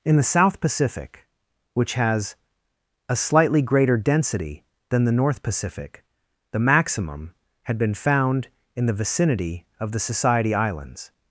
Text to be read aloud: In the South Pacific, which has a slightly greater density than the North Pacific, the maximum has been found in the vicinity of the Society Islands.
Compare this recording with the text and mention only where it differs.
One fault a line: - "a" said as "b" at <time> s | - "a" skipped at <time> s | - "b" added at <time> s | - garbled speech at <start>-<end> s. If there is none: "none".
- "has" said as "had" at 7.6 s